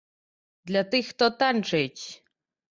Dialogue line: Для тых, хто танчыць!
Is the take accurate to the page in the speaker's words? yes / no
yes